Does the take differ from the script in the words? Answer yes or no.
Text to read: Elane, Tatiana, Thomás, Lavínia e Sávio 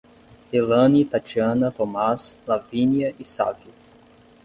no